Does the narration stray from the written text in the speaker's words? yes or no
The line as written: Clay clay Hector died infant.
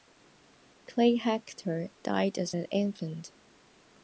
yes